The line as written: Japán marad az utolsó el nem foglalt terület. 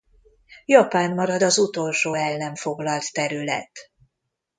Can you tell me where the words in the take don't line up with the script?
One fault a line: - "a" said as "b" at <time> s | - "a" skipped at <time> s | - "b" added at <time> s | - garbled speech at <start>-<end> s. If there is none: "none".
none